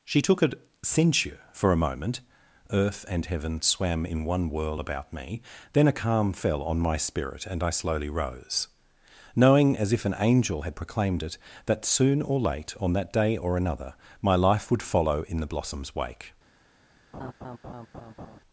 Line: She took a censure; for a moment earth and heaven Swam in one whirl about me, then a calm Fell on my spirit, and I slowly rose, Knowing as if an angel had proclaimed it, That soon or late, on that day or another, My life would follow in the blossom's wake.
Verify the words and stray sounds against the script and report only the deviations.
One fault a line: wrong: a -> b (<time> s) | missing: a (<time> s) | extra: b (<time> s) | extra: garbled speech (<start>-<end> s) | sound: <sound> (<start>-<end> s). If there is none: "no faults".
sound: laugh (17.1-18.4 s)